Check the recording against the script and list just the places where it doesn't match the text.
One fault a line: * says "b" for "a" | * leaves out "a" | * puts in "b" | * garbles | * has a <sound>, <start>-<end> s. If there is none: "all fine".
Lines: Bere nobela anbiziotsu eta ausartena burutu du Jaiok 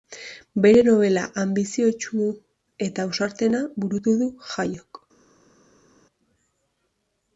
all fine